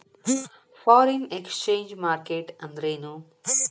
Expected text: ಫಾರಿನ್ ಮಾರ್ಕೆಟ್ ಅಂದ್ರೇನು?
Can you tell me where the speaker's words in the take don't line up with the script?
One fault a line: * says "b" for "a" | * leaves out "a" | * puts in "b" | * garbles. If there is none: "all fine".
* puts in "ಎಕ್ಸ್ಚೆಂಜ್"